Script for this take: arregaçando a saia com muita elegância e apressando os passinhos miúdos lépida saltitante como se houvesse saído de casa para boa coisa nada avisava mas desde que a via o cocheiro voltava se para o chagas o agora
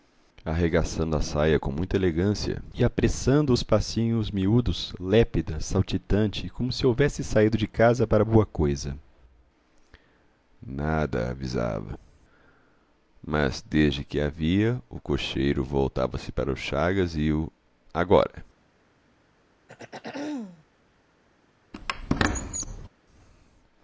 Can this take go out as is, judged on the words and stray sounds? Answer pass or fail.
fail